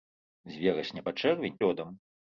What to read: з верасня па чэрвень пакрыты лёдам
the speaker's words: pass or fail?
fail